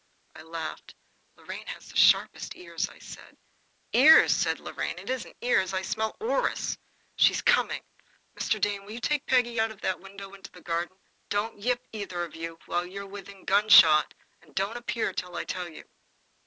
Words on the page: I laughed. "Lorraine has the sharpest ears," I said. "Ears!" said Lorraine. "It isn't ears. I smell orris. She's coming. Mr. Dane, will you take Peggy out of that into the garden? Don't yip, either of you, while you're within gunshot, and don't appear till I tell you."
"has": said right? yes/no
yes